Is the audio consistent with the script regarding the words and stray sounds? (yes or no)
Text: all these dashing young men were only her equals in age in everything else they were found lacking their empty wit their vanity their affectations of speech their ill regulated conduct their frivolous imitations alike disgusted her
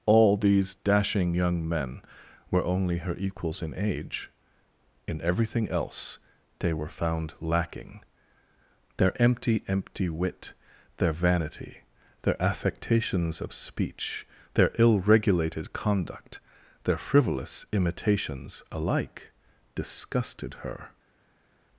no